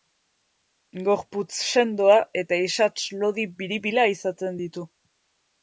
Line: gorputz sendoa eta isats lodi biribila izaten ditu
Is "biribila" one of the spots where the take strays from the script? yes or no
no